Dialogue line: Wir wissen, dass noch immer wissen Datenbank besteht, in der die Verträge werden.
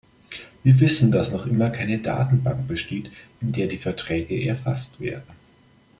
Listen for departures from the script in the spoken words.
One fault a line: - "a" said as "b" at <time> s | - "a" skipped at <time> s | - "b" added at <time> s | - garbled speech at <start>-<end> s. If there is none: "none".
- "wissen" said as "keine" at 1.7 s
- "erfasst" added at 4.5 s